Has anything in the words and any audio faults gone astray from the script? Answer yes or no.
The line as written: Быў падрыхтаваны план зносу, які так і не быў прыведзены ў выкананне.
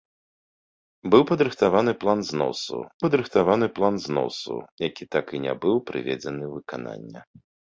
yes